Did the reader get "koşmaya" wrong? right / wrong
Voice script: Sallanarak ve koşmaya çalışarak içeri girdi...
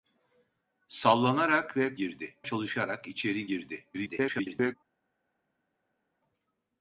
wrong